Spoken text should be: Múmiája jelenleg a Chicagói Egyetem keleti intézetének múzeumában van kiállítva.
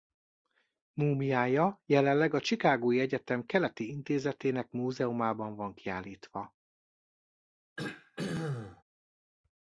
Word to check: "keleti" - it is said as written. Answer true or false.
true